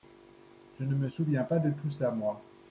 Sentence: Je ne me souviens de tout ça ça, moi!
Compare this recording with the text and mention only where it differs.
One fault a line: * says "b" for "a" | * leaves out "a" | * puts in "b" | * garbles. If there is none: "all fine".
* puts in "pas"
* leaves out "ça"